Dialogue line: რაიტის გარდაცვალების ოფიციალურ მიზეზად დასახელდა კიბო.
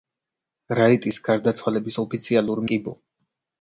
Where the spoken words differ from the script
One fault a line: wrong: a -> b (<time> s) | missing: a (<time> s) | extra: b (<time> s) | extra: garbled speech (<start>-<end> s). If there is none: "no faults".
missing: მიზეზად დასახელდა (2.6 s)